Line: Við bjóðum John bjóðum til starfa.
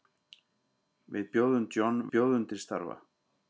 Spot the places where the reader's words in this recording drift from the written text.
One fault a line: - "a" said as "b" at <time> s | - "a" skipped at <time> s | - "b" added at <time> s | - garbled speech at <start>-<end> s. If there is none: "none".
none